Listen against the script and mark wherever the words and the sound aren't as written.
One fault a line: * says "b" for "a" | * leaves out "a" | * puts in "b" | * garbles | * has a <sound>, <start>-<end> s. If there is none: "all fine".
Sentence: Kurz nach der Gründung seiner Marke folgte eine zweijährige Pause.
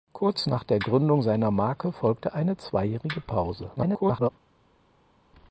* garbles